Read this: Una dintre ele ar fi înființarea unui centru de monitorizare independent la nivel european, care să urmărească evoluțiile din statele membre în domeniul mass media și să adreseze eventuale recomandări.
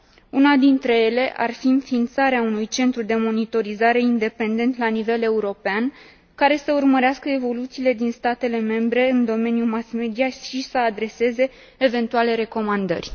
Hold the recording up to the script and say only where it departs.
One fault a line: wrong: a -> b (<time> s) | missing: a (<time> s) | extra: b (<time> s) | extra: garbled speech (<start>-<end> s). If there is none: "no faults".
no faults